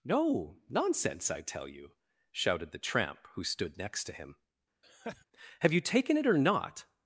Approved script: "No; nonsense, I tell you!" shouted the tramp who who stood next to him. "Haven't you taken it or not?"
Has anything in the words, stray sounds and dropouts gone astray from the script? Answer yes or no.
yes